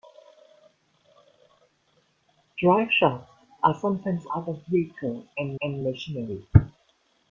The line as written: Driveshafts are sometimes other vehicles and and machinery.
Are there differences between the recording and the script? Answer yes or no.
no